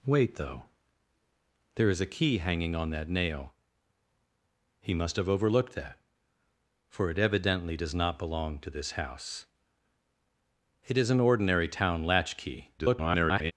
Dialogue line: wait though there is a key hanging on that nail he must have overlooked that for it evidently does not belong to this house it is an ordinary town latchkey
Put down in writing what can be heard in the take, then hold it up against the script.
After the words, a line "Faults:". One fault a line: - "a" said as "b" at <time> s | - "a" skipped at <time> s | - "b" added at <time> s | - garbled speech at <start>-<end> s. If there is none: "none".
wait though there is a key hanging on that nail he must have overlooked that for it evidently does not belong to this house it is an ordinary town latchkey [garbled]
Faults:
- garbled speech at 12.8-13.5 s